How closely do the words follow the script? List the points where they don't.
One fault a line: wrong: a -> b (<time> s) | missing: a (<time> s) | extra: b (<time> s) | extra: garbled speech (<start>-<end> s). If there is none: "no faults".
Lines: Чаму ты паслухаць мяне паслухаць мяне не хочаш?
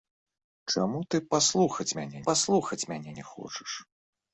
no faults